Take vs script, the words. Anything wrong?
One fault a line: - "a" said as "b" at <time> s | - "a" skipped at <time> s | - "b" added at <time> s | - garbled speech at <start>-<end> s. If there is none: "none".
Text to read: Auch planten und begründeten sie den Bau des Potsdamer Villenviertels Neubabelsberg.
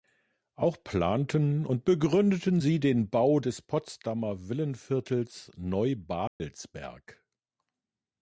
none